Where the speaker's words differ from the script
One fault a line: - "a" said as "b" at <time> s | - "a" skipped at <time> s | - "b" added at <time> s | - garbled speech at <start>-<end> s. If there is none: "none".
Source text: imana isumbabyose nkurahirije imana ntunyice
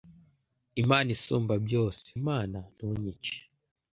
- "nkurahirije" skipped at 2.1 s